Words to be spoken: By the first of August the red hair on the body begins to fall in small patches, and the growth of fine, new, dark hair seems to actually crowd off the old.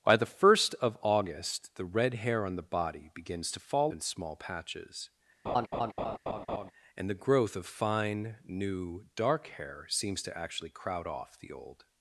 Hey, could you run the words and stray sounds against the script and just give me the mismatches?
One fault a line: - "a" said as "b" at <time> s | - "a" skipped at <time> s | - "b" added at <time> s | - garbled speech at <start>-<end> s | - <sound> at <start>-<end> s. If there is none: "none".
- laugh at 5.5-6.7 s